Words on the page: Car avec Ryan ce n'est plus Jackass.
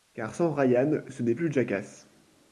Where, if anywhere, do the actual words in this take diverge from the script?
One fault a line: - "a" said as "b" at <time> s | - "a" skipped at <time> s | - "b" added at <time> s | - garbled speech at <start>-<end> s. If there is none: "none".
- "avec" said as "sans" at 0.3 s